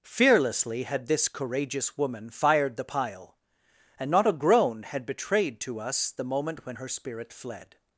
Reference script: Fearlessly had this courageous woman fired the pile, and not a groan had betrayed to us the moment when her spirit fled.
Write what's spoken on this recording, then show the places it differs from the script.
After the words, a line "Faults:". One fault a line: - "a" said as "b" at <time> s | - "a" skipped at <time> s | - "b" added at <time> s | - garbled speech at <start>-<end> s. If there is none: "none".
Fearlessly had this courageous woman fired the pile, and not a groan had betrayed to us the moment when her spirit fled.
Faults:
none